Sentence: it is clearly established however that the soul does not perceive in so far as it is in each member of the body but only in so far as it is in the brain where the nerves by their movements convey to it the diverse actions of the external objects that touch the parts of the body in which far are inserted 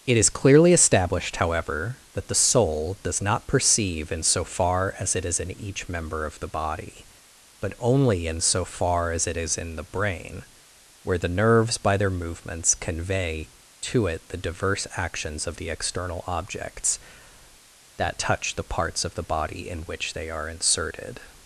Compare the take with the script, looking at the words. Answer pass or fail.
fail